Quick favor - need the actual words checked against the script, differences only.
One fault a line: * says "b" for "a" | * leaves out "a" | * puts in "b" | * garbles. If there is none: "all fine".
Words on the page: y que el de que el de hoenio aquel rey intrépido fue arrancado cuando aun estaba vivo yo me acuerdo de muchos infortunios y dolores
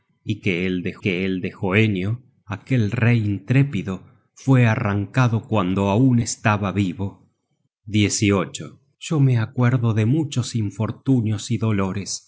all fine